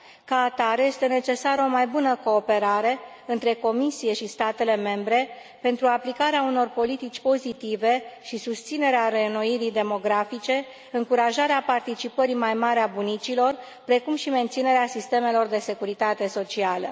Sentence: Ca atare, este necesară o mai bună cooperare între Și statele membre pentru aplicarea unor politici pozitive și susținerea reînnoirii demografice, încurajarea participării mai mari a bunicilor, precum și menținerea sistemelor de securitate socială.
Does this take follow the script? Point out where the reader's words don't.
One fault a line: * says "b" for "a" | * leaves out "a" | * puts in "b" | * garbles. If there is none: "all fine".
* puts in "Comisie"